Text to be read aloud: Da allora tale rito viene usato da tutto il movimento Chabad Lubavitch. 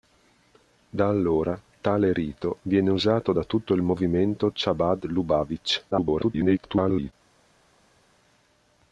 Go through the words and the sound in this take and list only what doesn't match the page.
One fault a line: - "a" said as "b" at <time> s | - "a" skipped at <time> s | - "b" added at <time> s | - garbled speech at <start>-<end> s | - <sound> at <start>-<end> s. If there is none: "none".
- garbled speech at 5.9-7.1 s